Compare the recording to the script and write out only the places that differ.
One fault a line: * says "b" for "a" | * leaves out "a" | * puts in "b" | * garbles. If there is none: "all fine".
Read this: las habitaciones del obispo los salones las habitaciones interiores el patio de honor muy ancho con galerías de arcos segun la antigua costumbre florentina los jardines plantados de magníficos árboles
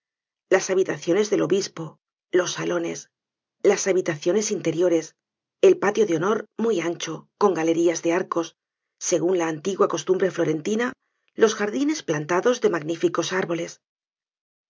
all fine